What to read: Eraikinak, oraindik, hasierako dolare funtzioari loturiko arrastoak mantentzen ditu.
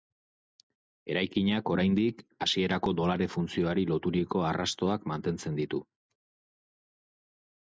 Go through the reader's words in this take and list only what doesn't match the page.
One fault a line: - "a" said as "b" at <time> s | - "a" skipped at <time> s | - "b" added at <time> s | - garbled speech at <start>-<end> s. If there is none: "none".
none